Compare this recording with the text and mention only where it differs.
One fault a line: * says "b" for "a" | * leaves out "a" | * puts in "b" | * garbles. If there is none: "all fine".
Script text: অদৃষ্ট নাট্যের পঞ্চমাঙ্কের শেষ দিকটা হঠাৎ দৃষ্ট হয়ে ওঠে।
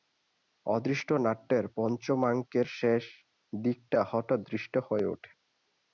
all fine